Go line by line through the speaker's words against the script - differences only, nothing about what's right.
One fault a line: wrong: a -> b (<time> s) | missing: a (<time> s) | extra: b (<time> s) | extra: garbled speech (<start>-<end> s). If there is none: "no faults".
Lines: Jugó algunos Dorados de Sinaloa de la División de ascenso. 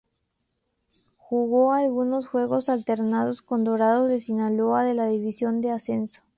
extra: juegos alternados con (2.3 s)